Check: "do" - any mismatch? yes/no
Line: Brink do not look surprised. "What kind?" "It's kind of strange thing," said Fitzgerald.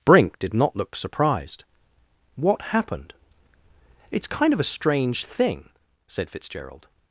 yes